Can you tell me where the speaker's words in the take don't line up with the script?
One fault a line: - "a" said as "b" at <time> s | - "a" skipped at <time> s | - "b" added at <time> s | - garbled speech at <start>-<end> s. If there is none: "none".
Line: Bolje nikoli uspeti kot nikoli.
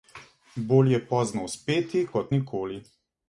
- "nikoli" said as "pozno" at 1.1 s